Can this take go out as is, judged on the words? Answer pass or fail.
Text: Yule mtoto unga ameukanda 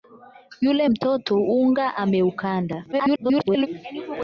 fail